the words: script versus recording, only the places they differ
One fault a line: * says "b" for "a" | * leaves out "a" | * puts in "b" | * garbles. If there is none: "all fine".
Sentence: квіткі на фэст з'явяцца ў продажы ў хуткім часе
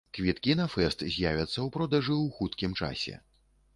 all fine